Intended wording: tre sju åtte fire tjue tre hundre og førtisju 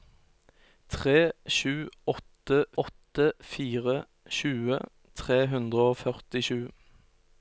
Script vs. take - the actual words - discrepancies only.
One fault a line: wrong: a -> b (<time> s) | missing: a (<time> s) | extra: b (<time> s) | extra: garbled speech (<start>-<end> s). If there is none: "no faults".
extra: åtte (2.8 s)